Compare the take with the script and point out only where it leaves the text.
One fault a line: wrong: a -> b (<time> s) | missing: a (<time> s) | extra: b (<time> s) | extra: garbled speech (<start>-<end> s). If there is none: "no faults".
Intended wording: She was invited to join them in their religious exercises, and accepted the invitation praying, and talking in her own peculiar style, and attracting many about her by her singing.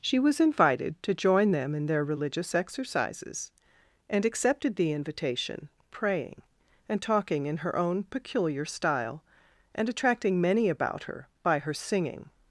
no faults